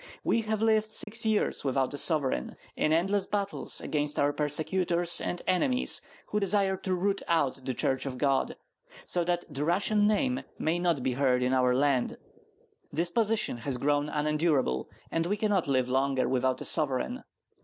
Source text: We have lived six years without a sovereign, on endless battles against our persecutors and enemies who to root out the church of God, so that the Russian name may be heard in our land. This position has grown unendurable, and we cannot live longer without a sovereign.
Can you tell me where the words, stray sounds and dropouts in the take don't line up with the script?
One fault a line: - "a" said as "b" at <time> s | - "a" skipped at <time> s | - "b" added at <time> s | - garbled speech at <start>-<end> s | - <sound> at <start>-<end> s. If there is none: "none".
- dropout at 1.0-1.1 s
- "on" said as "in" at 2.8 s
- "desire" added at 6.4 s
- "not" added at 10.8 s